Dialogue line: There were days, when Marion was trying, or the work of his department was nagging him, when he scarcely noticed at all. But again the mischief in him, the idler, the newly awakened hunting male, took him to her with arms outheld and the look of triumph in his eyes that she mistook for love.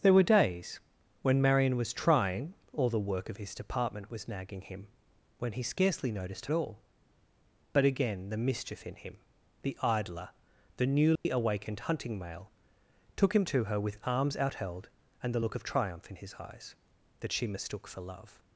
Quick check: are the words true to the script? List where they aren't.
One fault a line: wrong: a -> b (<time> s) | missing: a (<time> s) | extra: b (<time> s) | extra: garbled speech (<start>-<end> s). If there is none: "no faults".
no faults